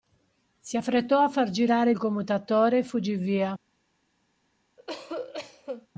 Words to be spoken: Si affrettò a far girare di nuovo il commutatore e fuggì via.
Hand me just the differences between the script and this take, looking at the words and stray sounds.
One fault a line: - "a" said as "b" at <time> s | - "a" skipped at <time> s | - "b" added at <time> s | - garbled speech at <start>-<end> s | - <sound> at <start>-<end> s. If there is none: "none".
- "di nuovo" skipped at 1.9 s
- cough at 4.8-5.9 s